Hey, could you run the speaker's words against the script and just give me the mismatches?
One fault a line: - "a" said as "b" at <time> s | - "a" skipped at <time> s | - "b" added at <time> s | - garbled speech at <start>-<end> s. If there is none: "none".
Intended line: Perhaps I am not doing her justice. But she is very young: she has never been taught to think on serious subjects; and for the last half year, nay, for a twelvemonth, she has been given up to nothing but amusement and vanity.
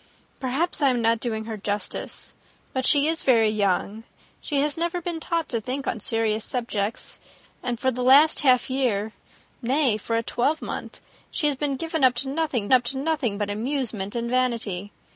- "up to nothing" added at 12.7 s